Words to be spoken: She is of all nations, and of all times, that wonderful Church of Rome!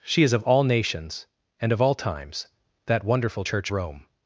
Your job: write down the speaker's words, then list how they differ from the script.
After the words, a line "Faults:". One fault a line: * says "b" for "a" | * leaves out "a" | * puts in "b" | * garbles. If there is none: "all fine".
She is of all nations, and of all times, that wonderful Church Rome!
Faults:
* leaves out "of"